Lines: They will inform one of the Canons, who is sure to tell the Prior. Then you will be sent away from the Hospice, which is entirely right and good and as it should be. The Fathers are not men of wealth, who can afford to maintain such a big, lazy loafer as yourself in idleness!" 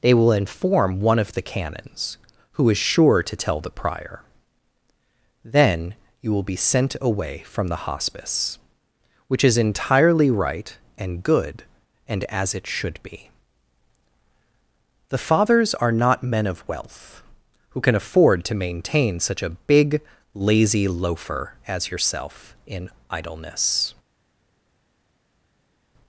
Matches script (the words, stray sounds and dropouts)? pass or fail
pass